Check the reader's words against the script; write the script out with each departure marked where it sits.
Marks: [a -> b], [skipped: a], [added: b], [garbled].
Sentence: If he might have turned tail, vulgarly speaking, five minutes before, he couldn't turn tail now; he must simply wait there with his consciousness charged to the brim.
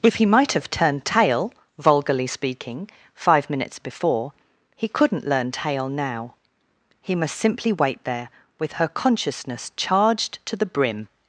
If he might have turned tail, vulgarly speaking, five minutes before, he couldn't [turn -> learn] tail now; he must simply wait there with [his -> her] consciousness charged to the brim.